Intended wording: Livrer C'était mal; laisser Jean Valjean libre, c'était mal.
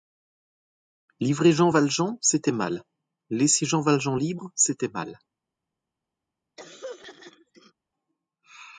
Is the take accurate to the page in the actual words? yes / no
no